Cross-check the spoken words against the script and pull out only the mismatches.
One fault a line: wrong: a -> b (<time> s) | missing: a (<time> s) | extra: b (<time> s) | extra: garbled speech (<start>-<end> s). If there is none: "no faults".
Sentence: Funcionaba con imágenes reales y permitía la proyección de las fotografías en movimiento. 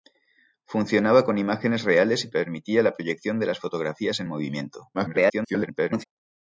extra: garbled speech (4.9-6.0 s)